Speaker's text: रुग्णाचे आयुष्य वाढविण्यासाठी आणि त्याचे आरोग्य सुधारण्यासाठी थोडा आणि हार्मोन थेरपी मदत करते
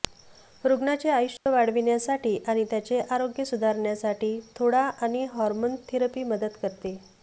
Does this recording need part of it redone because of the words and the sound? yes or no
yes